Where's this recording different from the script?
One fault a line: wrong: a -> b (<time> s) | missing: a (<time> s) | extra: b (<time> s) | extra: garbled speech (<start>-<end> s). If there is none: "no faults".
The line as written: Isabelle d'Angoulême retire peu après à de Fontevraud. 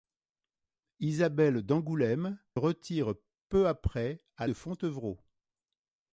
no faults